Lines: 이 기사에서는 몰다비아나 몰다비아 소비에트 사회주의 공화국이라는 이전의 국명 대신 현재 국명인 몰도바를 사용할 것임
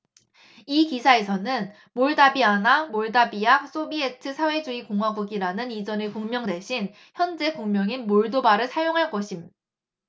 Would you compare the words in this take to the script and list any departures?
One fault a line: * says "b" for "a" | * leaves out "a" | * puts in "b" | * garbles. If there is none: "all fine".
all fine